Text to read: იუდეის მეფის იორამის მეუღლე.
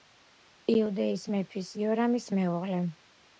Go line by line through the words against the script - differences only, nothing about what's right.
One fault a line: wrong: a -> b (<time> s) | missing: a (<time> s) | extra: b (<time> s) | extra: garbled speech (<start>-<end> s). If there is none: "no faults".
no faults